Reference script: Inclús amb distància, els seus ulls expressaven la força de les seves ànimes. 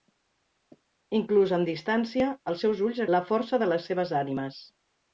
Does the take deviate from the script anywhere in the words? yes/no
yes